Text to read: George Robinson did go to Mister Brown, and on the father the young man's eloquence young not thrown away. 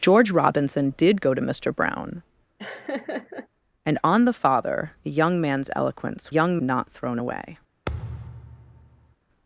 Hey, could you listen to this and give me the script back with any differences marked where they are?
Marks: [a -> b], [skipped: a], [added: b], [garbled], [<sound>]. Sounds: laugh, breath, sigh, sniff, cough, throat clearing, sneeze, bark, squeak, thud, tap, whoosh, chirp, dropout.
George Robinson did go to Mister Brown, [laugh] and on the father the young man's eloquence young not thrown away. [thud]